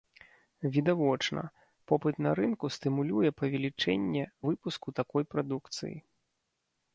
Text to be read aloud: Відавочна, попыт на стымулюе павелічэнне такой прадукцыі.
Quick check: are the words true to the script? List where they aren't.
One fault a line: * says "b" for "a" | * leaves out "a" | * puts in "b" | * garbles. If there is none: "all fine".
* puts in "рынку"
* puts in "выпуску"